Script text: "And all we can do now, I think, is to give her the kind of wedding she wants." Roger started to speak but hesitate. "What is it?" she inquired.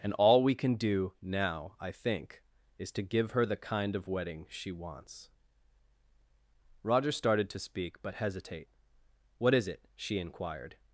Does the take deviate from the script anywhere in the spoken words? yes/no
no